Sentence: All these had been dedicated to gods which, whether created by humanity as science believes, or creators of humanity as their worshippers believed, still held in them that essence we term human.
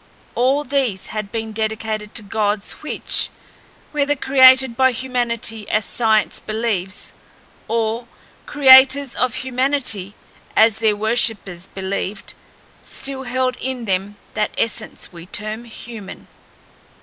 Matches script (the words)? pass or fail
pass